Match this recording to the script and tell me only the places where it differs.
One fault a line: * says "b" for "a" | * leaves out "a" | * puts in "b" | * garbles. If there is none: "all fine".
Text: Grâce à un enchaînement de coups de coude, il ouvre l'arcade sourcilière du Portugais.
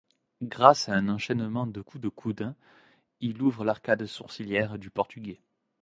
all fine